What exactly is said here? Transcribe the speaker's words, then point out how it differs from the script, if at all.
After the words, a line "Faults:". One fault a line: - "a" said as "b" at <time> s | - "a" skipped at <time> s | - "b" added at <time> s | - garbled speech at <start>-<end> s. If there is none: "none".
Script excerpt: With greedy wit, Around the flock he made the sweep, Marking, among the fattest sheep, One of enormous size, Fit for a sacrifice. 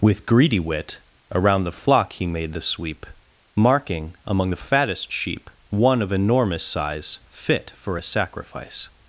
With greedy wit, Around the flock he made the sweep, Marking, among the fattest sheep, One of enormous size, Fit for a sacrifice.
Faults:
none